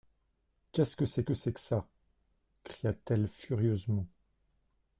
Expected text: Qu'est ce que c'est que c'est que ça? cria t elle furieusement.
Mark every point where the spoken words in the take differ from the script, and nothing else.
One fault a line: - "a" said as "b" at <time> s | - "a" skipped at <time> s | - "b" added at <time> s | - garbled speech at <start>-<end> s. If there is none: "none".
none